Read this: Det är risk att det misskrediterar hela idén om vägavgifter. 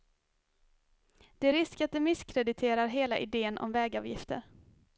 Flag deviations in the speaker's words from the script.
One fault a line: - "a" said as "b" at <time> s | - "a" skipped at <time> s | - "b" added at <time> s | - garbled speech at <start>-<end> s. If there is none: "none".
none